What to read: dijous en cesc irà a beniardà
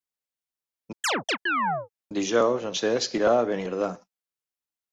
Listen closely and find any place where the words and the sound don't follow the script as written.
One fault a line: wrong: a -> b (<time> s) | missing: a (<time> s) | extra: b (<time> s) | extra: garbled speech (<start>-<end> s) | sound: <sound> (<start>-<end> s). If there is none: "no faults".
sound: chirp (1.0-1.9 s)